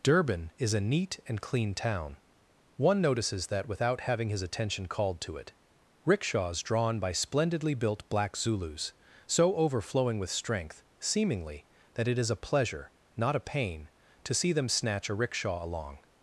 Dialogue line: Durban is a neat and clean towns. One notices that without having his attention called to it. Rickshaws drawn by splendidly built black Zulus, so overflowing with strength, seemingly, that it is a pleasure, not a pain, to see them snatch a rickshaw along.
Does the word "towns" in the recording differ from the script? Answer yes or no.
yes